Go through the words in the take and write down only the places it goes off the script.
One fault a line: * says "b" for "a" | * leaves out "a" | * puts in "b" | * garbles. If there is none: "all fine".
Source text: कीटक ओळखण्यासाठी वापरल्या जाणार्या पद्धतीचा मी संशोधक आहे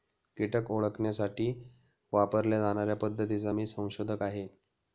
all fine